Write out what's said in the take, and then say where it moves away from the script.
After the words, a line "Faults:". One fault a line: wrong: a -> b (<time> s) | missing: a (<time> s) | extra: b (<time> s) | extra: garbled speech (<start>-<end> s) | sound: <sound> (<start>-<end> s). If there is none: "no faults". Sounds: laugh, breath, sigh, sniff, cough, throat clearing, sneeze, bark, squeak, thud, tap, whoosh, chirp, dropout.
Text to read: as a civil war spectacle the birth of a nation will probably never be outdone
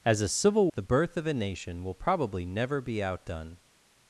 as a civil the birth of a nation will probably never be outdone
Faults:
missing: war spectacle (0.7 s)